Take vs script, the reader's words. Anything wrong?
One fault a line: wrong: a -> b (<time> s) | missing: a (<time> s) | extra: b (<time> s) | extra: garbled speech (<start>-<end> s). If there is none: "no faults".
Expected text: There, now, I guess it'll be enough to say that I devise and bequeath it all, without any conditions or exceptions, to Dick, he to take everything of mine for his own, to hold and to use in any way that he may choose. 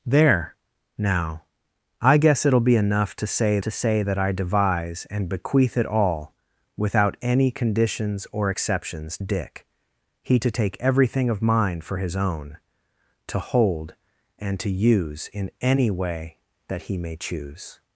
extra: to say (3.6 s)
missing: to (9.2 s)